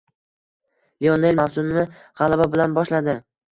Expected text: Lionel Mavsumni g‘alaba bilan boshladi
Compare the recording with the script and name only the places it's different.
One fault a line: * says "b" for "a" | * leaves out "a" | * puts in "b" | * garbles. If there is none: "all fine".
all fine